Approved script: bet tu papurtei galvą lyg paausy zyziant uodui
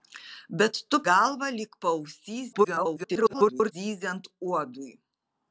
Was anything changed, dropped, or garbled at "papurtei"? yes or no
yes